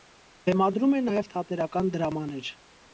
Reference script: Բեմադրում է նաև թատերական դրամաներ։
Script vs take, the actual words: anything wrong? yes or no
no